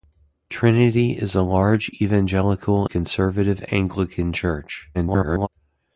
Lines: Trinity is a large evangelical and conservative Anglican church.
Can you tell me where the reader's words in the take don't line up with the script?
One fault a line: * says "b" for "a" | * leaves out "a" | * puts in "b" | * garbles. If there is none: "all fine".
* leaves out "and"
* garbles